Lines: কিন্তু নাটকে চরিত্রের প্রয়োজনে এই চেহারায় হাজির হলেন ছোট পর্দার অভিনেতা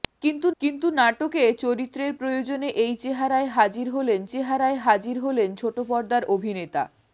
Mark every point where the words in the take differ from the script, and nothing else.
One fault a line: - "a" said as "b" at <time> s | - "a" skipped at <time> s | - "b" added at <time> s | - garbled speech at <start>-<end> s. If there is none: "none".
- "কিন্তু" added at 0.6 s
- "চেহারায় হাজির হলেন" added at 4.3 s